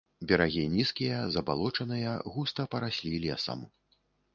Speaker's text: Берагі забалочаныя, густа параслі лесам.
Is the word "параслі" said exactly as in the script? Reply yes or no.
yes